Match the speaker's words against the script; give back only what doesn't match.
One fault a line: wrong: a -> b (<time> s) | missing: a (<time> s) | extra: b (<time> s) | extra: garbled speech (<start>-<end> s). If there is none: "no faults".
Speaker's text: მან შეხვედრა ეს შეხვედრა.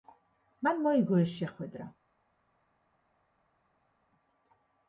wrong: შეხვედრა -> მოიგო (0.8 s)